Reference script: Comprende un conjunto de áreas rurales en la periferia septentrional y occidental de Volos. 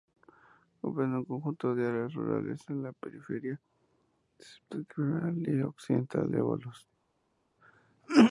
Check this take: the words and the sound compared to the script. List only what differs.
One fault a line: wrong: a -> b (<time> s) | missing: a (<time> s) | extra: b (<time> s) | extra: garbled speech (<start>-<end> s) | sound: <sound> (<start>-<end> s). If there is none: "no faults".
no faults